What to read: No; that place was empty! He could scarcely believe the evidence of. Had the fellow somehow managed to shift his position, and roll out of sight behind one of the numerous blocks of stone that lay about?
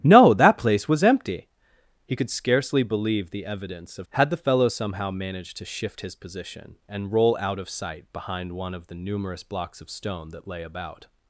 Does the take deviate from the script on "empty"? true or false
false